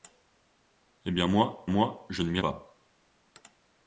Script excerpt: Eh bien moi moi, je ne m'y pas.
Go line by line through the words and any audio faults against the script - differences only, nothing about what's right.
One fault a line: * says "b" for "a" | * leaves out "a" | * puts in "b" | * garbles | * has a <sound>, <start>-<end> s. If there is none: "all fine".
all fine